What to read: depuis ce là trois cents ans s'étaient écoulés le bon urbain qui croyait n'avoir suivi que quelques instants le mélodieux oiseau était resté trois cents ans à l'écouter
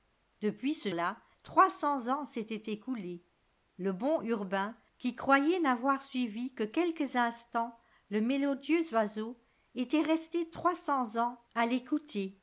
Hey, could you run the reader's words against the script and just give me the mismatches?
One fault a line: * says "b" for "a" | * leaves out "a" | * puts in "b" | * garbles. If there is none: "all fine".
all fine